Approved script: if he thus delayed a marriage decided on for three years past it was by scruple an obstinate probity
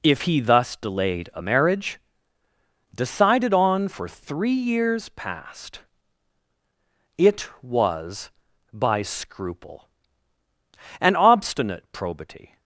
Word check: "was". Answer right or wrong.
right